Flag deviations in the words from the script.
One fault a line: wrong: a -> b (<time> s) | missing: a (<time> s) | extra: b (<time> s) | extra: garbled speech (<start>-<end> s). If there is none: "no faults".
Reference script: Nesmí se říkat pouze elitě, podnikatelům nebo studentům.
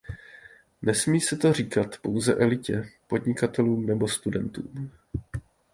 extra: to (1.4 s)